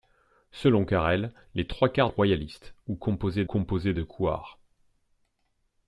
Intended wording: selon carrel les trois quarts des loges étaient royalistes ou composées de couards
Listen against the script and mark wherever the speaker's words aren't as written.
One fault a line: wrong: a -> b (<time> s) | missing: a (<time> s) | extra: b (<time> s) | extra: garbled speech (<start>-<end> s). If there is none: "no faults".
missing: des loges étaient (2.1 s)
extra: composées (3.4 s)